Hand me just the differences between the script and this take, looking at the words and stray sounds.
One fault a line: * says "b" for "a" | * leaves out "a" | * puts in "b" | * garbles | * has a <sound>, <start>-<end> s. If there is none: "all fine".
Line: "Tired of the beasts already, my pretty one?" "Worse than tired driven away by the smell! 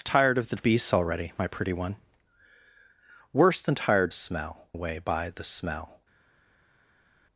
* says "smell" for "driven"